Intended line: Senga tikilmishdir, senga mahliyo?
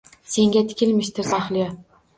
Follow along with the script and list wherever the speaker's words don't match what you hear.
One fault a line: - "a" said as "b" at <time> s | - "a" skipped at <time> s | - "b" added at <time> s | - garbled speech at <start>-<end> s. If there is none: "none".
- "senga" skipped at 1.3 s